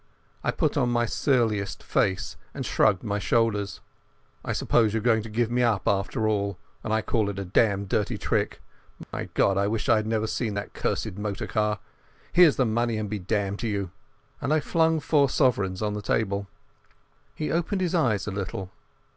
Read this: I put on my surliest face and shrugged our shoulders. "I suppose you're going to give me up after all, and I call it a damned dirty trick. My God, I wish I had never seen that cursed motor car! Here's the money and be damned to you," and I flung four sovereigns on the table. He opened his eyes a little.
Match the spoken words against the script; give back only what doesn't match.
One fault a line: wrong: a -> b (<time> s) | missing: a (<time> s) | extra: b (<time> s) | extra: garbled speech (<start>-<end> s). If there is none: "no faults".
wrong: our -> my (3.0 s)